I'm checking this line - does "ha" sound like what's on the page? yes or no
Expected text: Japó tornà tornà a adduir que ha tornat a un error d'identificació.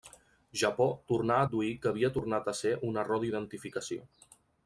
no